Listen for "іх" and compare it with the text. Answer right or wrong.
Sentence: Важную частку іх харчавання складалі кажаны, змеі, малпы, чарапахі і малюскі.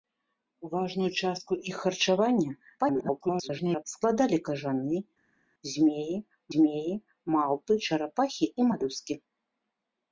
right